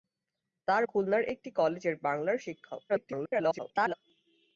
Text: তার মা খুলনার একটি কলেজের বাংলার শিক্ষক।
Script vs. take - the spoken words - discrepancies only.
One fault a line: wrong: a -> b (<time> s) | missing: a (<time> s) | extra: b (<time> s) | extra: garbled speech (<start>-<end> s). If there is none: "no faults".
missing: মা (0.8 s)
extra: garbled speech (2.9-3.9 s)